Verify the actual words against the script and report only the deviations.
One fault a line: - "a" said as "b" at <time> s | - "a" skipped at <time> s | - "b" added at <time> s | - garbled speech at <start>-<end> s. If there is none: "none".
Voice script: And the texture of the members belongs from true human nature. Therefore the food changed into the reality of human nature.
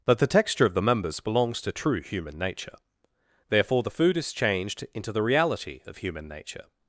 - "And" said as "But" at 0.1 s
- "from" said as "to" at 1.6 s
- "is" added at 4.2 s